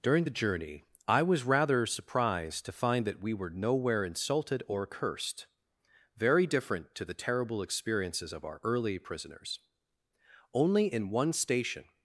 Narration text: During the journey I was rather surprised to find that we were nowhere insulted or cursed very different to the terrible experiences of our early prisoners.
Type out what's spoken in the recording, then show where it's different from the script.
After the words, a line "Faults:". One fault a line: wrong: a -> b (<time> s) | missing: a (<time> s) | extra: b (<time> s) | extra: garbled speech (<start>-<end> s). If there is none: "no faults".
During the journey I was rather surprised to find that we were nowhere insulted or cursed very different to the terrible experiences of our early prisoners. Only in one station
Faults:
extra: Only in one station (10.5 s)